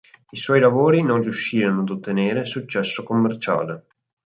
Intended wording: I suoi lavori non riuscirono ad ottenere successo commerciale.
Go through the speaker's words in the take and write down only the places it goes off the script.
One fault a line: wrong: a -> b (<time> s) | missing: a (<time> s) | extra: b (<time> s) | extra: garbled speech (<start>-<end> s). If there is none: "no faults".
no faults